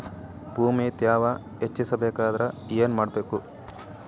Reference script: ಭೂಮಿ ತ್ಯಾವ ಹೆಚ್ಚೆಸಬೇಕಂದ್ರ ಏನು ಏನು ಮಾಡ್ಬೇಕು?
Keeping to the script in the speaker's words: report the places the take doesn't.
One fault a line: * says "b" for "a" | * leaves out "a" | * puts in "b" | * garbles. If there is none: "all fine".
* leaves out "ಏನು"